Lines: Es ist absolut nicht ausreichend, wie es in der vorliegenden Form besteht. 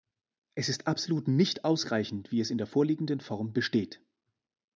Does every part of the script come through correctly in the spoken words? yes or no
yes